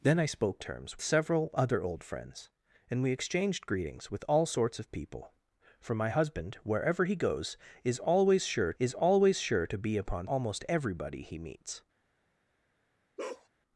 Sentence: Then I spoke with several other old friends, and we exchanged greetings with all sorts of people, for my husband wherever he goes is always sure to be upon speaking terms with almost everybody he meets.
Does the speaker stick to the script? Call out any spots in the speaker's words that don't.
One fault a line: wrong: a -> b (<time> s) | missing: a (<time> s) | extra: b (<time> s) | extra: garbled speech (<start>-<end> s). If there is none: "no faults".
wrong: with -> terms (0.6 s)
extra: is always sure (8.8 s)
missing: speaking terms with (10.3 s)